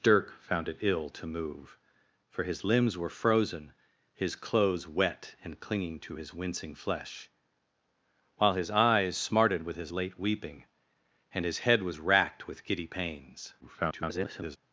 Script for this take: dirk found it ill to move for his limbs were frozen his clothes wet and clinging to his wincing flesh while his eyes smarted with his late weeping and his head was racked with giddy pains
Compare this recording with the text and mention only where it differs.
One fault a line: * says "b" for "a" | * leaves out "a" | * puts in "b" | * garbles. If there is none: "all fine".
* garbles